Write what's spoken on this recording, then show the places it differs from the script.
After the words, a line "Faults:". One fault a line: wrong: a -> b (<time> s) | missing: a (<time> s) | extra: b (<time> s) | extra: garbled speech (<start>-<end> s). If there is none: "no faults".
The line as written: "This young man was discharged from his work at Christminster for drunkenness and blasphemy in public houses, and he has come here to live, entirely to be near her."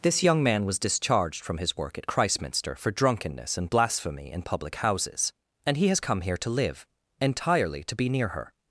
"This young man was discharged from his work at Christminster for drunkenness and blasphemy in public houses, and he has come here to live, entirely to be near her."
Faults:
no faults